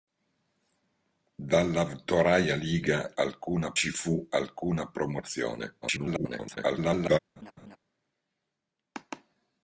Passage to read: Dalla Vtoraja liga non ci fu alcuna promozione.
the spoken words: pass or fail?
fail